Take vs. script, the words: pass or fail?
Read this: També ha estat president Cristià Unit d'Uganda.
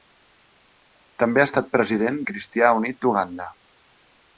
pass